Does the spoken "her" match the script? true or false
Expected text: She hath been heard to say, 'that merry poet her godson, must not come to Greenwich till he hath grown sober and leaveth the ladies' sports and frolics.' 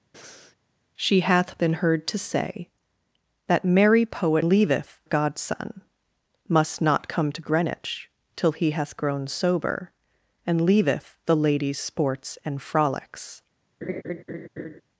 false